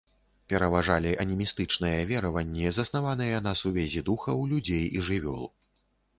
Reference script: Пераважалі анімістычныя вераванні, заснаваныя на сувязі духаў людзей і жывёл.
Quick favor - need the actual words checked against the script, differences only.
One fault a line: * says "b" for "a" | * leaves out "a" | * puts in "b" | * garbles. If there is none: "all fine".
all fine